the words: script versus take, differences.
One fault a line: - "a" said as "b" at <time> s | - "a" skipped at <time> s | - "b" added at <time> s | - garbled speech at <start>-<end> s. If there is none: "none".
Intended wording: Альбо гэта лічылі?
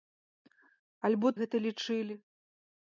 none